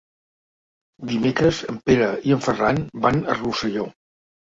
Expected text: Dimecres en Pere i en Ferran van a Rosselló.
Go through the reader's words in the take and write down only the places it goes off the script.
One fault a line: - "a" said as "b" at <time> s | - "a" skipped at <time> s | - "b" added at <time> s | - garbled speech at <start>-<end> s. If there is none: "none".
none